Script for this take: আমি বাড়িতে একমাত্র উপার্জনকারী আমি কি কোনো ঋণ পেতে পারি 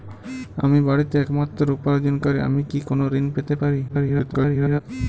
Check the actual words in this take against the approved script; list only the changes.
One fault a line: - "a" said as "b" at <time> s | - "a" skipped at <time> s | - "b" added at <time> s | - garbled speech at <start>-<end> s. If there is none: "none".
- garbled speech at 3.9-4.8 s